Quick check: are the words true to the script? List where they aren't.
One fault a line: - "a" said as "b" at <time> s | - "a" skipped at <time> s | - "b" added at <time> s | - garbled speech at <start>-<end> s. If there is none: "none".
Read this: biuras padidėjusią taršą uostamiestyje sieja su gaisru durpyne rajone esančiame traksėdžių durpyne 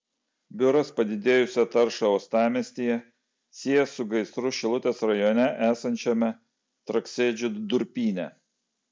- "durpyne" said as "šilutės" at 4.6 s